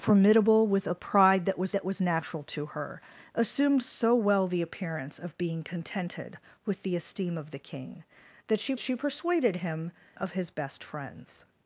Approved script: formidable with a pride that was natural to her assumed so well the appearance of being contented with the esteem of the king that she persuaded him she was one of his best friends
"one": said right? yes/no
no